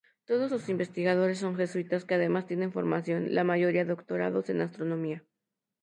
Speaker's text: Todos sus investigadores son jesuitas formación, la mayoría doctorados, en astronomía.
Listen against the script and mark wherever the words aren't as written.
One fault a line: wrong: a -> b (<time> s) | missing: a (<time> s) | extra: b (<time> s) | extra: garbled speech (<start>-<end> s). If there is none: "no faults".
extra: que además tienen (2.0 s)